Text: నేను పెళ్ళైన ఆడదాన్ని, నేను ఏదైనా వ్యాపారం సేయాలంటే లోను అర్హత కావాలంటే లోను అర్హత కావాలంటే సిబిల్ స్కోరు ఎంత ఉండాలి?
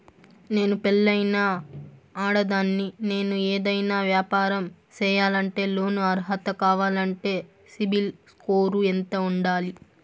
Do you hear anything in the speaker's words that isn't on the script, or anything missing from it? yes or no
yes